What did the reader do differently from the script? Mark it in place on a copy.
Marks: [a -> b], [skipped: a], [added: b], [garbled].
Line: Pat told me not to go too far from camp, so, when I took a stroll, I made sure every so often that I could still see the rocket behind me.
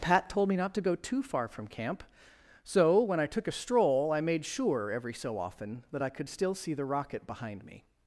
Pat told me not to go too far from camp, so, when I took a stroll, I made sure every so often that I could still see the rocket behind me.